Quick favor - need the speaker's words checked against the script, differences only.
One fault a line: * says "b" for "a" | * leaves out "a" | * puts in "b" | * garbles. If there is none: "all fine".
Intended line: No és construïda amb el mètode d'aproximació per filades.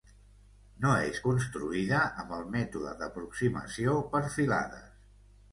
all fine